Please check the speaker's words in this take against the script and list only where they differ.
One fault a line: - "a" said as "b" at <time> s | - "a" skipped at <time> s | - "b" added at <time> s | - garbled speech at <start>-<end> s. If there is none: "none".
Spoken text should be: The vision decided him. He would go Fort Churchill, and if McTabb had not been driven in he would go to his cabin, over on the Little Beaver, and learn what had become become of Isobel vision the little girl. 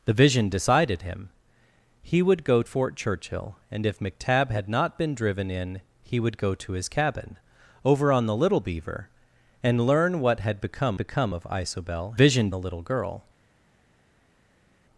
none